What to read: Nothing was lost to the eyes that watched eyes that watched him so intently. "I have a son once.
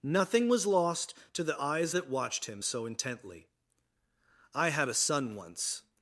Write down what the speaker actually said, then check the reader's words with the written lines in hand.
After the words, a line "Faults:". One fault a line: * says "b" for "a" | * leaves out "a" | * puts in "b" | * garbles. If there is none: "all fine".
Nothing was lost to the eyes that watched him so intently. "I had a son once.
Faults:
* leaves out "eyes that watched"
* says "had" for "have"